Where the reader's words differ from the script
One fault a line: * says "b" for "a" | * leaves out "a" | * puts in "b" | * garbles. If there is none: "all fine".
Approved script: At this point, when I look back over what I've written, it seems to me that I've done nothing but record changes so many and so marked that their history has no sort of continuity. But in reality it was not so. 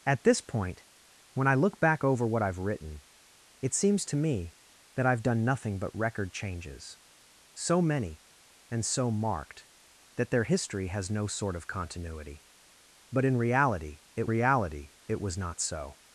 * puts in "reality it"